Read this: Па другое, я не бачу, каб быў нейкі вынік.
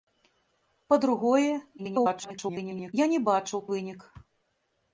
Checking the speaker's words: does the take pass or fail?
fail